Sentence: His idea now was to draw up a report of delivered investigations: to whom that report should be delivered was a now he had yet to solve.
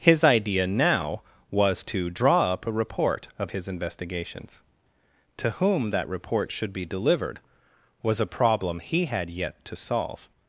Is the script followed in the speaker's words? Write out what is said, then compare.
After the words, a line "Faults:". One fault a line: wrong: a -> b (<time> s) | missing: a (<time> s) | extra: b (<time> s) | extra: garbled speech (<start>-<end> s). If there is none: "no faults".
His idea now was to draw up a report of his investigations: to whom that report should be delivered was a problem he had yet to solve.
Faults:
wrong: delivered -> his (3.5 s)
wrong: now -> problem (8.3 s)